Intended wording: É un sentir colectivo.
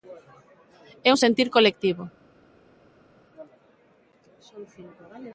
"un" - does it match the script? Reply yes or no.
yes